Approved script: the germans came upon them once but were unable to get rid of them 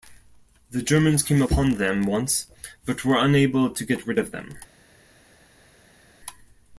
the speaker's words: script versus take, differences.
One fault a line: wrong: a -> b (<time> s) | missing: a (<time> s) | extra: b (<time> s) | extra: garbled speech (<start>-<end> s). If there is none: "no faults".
no faults